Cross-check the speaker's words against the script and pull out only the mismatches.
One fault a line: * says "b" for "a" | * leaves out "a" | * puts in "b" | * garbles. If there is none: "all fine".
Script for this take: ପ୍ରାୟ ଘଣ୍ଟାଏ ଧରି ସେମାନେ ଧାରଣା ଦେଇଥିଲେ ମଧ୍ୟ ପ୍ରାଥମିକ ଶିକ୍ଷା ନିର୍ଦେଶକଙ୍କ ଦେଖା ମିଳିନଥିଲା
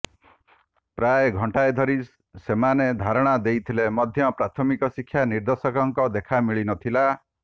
all fine